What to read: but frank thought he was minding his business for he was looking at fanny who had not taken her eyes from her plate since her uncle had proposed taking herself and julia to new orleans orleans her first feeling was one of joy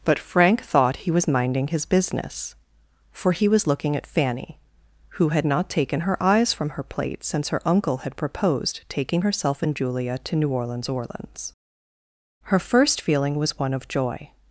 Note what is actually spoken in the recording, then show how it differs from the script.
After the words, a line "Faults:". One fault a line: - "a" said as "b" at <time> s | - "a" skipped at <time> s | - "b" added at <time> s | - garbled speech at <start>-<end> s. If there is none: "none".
but frank thought he was minding his business for he was looking at fanny who had not taken her eyes from her plate since her uncle had proposed taking herself and julia to new orleans orleans her first feeling was one of joy
Faults:
none